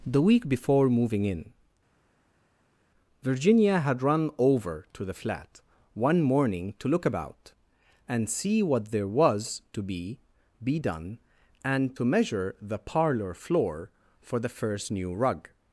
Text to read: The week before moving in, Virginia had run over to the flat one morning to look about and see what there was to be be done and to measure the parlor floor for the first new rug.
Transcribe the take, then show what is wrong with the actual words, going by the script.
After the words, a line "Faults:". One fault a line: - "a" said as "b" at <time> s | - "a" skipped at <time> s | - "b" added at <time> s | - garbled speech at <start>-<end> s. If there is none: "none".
The week before moving in, Virginia had run over to the flat one morning to look about and see what there was to be be done and to measure the parlor floor for the first new rug.
Faults:
none